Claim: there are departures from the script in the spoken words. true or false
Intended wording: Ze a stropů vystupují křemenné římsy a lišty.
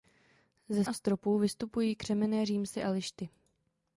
false